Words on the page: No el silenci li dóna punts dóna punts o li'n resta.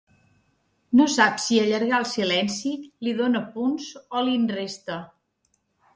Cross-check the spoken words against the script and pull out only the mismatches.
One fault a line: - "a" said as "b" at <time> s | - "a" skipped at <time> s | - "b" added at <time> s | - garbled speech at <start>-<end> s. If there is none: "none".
- "sap si allargar" added at 1.1 s
- "dóna punts" skipped at 3.9 s